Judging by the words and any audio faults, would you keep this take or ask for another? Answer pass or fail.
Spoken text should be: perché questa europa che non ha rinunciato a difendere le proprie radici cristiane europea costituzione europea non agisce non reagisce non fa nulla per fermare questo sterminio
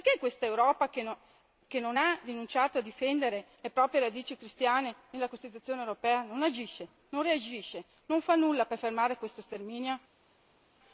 fail